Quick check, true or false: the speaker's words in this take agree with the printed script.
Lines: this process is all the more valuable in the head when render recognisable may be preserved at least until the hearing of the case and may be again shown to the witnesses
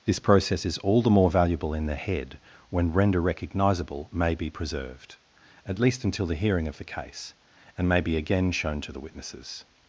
true